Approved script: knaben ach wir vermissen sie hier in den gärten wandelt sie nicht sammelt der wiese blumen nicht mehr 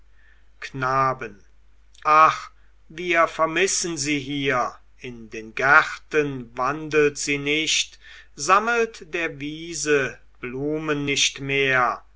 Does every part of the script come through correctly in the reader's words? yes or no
yes